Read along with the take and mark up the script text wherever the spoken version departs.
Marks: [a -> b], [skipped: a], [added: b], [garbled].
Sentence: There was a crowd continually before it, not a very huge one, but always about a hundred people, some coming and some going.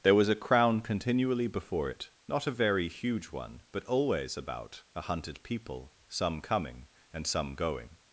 There was a [crowd -> crown] continually before it, not a very huge one, but always about a [hundred -> hunted] people, some coming and some going.